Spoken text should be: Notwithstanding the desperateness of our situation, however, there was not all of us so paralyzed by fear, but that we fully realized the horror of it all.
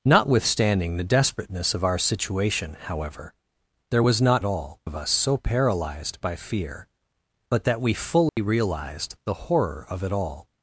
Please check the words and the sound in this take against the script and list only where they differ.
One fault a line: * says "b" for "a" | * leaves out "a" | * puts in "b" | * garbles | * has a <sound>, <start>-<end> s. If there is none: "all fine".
* has a dropout, 8.3-8.4 s